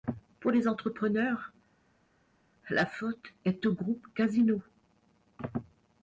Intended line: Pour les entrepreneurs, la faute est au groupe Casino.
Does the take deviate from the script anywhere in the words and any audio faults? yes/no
no